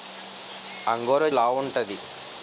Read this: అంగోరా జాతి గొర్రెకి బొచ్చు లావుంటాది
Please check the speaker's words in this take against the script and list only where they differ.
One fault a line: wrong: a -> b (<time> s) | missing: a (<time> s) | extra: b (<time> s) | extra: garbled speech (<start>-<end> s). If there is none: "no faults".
missing: జాతి గొర్రెకి బొచ్చు (1.3 s)